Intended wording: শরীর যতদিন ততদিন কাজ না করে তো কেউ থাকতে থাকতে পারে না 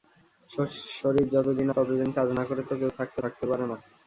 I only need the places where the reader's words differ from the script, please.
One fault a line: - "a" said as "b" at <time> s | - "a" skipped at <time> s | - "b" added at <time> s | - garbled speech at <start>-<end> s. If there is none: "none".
none